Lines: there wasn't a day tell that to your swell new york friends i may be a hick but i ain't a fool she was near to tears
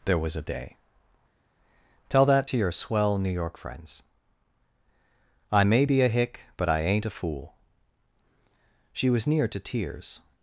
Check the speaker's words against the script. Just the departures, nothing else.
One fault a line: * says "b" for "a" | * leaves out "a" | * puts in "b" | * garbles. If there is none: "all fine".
* says "was" for "wasn't"